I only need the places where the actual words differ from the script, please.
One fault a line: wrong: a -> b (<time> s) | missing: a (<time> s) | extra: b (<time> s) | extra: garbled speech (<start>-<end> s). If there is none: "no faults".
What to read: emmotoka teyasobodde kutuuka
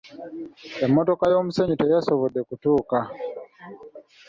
extra: y'omusenyu (1.3 s)